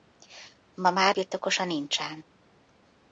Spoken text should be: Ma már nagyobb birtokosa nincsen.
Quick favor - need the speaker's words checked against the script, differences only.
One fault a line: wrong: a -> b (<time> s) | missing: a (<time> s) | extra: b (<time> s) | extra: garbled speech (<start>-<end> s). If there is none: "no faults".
missing: nagyobb (1.1 s)